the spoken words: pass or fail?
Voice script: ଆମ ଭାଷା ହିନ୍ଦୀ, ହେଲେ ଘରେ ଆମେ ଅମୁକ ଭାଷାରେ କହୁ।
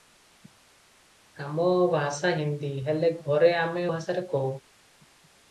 fail